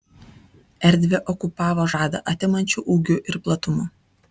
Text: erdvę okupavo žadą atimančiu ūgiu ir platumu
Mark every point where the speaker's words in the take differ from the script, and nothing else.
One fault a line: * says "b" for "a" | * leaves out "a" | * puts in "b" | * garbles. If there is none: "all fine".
all fine